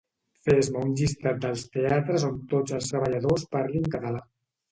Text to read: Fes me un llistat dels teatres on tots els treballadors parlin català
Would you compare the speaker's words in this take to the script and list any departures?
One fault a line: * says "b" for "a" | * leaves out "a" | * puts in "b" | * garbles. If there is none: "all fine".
all fine